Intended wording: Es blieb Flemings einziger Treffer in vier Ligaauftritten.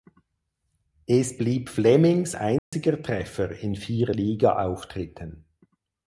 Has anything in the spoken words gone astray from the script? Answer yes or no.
no